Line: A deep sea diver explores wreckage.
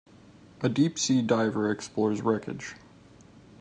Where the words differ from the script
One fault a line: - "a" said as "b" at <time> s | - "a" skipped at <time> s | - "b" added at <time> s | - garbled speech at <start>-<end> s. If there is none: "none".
none